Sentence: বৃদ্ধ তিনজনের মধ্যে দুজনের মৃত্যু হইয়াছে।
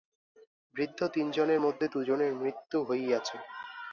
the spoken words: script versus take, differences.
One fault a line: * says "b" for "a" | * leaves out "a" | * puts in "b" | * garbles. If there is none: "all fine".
all fine